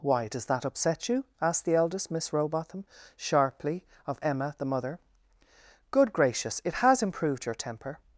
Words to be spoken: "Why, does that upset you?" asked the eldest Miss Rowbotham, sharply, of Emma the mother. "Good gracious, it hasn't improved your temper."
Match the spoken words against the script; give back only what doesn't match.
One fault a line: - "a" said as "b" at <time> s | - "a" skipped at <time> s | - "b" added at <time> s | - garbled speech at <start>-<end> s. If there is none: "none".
- "hasn't" said as "has" at 6.7 s